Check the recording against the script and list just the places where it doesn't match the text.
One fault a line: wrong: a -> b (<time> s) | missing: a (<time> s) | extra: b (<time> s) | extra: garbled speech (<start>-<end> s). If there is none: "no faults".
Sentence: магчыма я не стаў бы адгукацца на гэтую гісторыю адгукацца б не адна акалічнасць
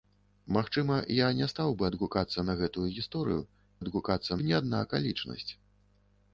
no faults